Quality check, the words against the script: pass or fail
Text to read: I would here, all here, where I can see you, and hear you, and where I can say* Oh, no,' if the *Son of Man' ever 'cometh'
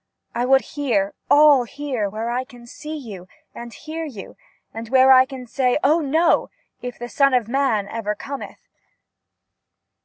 pass